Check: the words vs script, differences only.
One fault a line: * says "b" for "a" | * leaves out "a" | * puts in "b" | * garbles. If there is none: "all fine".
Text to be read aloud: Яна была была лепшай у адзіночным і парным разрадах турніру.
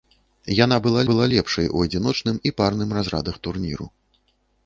all fine